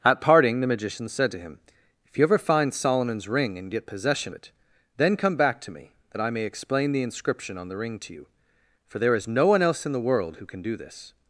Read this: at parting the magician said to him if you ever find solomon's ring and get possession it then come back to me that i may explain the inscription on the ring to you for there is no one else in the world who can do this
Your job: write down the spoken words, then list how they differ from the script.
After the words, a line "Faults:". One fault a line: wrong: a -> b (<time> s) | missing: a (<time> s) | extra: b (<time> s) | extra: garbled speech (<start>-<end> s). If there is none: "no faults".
at parting the magician said to him if you ever find solomon's ring and get possession it then come back to me that i may explain the inscription on the ring to you for there is no one else in the world who can do this
Faults:
no faults